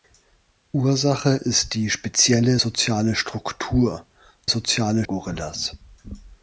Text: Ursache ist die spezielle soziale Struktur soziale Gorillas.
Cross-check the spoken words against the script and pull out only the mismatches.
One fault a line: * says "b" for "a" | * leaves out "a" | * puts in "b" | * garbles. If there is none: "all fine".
all fine